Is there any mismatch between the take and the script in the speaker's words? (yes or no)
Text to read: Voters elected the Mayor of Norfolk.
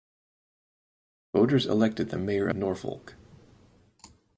yes